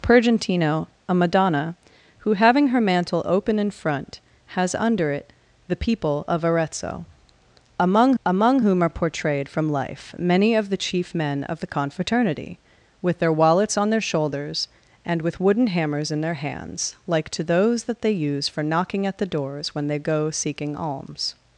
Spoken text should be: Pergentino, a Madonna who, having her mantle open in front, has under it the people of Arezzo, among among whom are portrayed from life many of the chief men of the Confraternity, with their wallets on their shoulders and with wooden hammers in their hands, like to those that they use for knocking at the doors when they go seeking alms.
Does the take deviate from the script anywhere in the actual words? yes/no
no